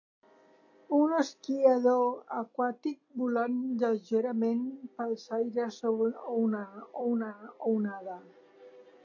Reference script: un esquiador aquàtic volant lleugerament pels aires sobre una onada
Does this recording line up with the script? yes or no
no